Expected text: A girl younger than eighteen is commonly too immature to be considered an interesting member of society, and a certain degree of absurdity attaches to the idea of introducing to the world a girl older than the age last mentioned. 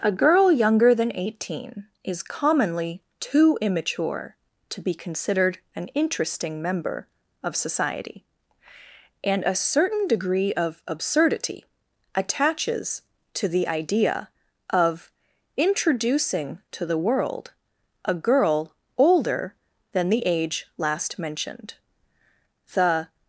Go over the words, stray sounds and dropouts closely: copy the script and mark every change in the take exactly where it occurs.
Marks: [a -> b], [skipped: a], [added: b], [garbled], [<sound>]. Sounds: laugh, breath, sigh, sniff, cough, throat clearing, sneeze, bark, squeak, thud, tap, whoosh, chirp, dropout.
A girl younger than eighteen is commonly too immature to be considered an interesting member of society, and a certain degree of absurdity attaches to the idea of introducing to the world a girl older than the age last mentioned. [added: The]